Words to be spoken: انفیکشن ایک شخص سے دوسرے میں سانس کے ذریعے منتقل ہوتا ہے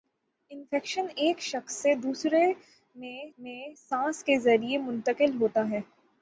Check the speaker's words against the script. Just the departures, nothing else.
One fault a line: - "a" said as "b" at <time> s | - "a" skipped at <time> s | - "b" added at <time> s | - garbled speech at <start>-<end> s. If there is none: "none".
- "میں" added at 3.4 s